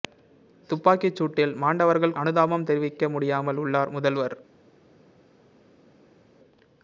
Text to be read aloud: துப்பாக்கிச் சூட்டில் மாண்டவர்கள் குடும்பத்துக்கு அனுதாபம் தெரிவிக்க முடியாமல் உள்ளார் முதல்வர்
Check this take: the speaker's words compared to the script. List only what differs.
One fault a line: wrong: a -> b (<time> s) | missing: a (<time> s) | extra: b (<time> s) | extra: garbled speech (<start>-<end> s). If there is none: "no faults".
missing: குடும்பத்துக்கு (2.1 s)